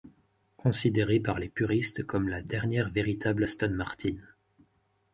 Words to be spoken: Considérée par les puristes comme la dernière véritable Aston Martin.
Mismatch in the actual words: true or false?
false